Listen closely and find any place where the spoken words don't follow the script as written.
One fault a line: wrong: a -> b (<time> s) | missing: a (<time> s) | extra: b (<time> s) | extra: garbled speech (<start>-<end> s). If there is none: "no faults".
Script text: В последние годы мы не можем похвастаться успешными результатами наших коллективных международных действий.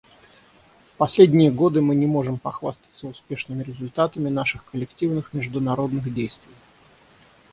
no faults